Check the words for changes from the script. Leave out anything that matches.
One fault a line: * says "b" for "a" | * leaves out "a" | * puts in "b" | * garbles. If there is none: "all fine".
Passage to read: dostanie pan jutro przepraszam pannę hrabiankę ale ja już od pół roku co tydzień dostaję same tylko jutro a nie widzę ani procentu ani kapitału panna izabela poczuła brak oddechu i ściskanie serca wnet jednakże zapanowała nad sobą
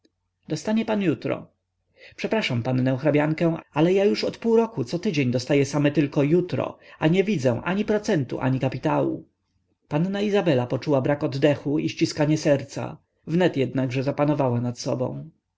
all fine